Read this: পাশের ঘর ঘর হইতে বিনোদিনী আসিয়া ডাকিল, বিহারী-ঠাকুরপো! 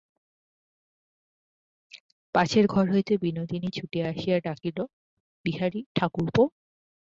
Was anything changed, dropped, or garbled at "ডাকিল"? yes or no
no